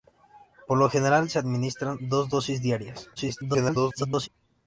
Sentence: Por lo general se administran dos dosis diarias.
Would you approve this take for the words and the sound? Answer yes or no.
no